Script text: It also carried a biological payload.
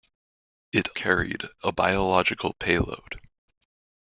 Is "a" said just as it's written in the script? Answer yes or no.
yes